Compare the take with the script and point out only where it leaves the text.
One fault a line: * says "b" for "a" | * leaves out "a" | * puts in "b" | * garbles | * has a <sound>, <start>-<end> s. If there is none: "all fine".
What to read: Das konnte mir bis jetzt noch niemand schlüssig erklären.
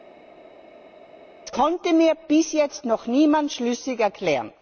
all fine